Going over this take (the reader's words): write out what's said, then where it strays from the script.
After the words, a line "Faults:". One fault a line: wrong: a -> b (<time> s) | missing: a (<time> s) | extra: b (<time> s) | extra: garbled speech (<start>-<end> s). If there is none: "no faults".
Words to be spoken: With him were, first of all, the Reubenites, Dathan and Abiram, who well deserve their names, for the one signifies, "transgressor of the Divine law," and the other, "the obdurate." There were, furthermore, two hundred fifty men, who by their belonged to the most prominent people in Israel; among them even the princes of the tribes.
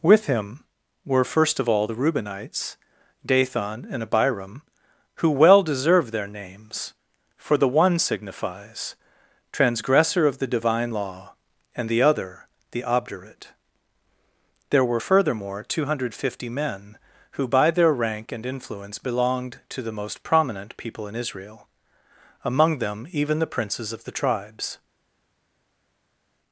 With him were, first of all, the Reubenites, Dathan and Abiram, who well deserve their names, for the one signifies, "transgressor of the Divine law," and the other, "the obdurate." There were, furthermore, two hundred fifty men, who by their rank and influence belonged to the most prominent people in Israel; among them even the princes of the tribes.
Faults:
extra: rank and influence (17.9 s)